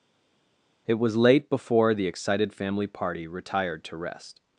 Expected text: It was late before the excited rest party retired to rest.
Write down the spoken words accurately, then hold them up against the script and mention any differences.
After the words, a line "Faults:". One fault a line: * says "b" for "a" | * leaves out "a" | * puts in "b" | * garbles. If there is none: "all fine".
It was late before the excited family party retired to rest.
Faults:
* says "family" for "rest"